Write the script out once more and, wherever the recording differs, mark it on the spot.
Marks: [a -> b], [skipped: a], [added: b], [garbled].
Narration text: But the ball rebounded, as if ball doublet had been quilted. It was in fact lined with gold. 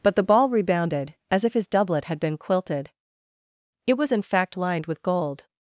But the ball rebounded, as if [ball -> his] doublet had been quilted. It was in fact lined with gold.